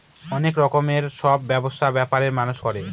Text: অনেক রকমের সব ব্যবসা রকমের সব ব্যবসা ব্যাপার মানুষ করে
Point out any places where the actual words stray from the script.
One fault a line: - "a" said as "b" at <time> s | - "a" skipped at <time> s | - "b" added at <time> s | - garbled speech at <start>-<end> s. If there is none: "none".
- "রকমের সব ব্যবসা" skipped at 1.9 s